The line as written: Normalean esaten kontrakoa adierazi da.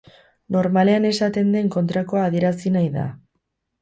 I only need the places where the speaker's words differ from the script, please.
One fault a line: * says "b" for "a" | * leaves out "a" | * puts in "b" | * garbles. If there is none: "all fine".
* puts in "den"
* puts in "nahi"